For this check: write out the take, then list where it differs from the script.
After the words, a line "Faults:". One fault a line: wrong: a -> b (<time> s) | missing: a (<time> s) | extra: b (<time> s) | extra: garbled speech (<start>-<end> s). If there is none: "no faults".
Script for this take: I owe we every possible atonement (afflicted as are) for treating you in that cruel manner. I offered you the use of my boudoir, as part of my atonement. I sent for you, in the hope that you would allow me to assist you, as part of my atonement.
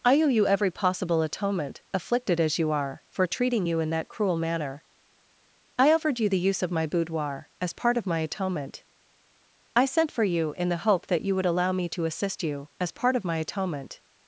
I owe you every possible atonement (afflicted as you are) for treating you in that cruel manner. I offered you the use of my boudoir, as part of my atonement. I sent for you, in the hope that you would allow me to assist you, as part of my atonement.
Faults:
wrong: we -> you (0.3 s)
extra: you (2.6 s)